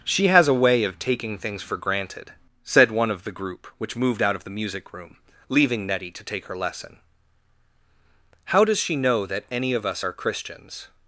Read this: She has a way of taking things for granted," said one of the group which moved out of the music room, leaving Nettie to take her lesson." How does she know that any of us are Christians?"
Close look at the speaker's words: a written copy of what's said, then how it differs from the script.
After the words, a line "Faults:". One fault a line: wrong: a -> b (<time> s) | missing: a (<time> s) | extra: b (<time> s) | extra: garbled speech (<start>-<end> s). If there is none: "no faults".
She has a way of taking things for granted," said one of the group which moved out of the music room, leaving Nettie to take her lesson." How does she know that any of us are Christians?"
Faults:
no faults